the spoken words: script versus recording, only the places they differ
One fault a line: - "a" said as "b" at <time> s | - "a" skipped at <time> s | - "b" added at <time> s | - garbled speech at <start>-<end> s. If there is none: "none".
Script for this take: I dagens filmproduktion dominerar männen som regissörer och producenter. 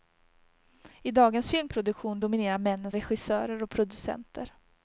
- "som" skipped at 2.9 s